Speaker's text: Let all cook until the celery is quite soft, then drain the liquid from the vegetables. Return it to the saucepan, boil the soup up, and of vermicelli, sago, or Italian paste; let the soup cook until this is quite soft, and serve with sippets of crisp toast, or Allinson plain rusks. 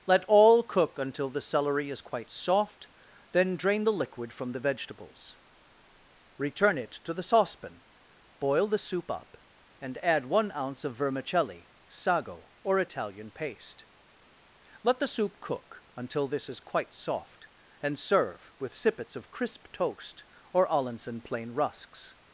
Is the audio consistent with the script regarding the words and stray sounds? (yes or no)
no